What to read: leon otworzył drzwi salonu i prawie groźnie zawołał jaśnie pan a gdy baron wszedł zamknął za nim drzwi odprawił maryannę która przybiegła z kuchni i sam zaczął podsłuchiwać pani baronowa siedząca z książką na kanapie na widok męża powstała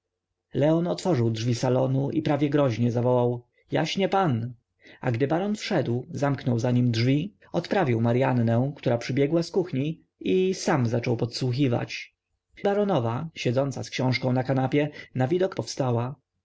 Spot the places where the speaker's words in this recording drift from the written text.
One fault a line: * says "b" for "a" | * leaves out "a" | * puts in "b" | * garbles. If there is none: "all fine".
* leaves out "pani"
* leaves out "męża"